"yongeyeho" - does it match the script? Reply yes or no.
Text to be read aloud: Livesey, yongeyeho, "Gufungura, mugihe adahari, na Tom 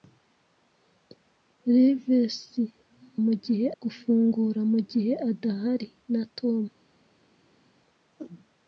no